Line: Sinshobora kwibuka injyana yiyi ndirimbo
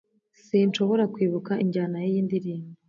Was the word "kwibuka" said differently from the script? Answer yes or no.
no